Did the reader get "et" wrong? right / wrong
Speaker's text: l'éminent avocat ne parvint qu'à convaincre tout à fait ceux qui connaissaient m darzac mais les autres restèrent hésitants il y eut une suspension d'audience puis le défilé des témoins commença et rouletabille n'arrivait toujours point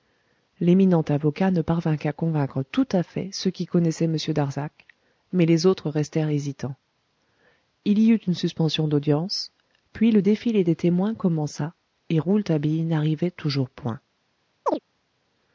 right